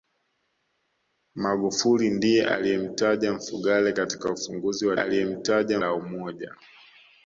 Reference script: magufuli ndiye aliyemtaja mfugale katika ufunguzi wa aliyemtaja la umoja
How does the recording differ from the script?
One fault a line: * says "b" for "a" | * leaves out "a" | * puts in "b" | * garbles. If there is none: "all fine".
all fine